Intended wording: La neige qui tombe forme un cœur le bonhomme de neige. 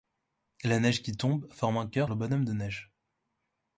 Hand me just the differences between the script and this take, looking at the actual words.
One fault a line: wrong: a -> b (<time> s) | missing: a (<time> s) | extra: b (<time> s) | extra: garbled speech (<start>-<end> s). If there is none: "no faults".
no faults